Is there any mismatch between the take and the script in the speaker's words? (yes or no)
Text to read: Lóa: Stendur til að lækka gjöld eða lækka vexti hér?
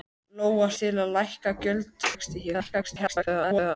yes